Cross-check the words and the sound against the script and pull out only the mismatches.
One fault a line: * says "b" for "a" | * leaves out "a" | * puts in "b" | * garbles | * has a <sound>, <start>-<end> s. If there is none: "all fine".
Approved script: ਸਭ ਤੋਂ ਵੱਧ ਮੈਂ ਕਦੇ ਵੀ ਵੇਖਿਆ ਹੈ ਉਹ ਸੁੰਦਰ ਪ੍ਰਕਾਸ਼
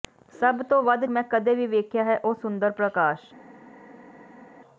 all fine